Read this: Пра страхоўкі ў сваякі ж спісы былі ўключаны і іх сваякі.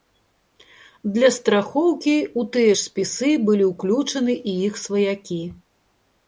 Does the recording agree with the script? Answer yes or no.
no